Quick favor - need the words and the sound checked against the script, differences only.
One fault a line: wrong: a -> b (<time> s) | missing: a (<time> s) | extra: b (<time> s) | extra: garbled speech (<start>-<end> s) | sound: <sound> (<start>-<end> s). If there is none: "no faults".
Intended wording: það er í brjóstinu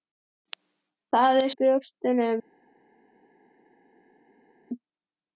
no faults